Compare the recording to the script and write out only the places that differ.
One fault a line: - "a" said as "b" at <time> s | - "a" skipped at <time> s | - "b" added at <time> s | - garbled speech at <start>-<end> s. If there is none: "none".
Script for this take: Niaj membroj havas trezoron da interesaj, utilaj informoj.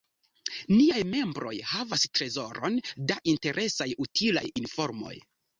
none